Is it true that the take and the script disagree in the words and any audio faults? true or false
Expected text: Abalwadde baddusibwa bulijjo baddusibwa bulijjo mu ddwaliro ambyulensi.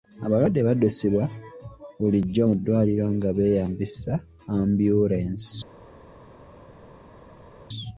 true